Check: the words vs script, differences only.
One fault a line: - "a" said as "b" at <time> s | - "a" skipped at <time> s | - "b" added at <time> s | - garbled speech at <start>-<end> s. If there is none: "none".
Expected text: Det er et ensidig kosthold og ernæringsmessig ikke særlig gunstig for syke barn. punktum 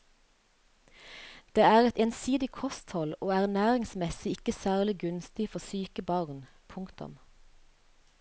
none